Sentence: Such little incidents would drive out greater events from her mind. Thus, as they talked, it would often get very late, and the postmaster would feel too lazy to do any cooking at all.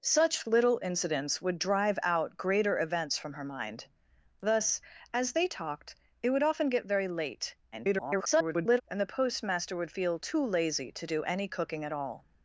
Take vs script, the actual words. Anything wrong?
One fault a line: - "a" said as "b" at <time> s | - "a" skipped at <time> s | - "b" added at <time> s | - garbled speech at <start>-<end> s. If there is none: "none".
- garbled speech at 7.7-8.8 s